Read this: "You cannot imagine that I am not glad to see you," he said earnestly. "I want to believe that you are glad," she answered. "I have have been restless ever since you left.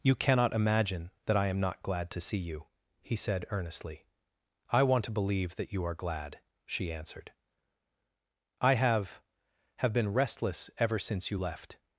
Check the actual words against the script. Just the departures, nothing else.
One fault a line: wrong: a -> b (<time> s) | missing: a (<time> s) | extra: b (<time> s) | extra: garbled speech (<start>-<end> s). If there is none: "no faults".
no faults